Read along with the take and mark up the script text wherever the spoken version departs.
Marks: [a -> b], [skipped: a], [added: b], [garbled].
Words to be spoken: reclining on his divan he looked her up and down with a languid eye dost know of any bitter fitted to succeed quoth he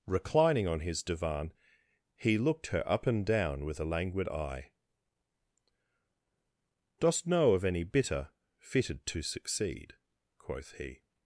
reclining on his divan he looked her up and down with a languid eye dost know of any bitter fitted to succeed quoth he